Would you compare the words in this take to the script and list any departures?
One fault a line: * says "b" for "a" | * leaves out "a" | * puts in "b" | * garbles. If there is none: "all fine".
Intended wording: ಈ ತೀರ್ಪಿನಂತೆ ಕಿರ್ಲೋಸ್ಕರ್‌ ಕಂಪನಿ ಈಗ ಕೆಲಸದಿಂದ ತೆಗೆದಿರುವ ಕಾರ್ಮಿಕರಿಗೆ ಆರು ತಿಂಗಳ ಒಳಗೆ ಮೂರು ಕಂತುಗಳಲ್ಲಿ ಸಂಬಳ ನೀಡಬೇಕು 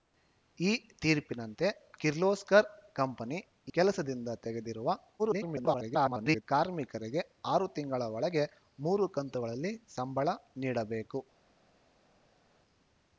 * leaves out "ಈಗ"
* garbles